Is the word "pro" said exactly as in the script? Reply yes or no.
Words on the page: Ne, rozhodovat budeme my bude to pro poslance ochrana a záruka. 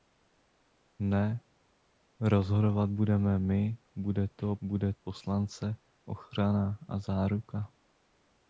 no